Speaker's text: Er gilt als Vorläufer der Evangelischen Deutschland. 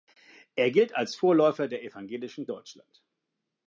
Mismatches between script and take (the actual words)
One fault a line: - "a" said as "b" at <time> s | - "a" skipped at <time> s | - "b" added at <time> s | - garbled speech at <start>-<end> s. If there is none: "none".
none